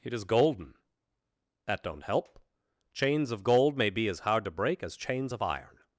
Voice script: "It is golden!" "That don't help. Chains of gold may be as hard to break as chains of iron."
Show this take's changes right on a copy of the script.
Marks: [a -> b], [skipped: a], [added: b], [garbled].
"It is golden!" "That don't help. Chains of gold may be as hard to break as chains of iron."